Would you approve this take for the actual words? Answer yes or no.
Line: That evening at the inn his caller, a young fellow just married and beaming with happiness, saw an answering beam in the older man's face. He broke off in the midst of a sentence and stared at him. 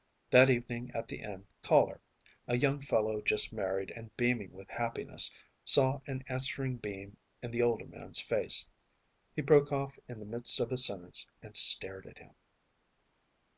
no